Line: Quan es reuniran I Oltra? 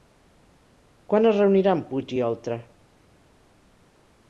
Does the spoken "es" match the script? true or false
true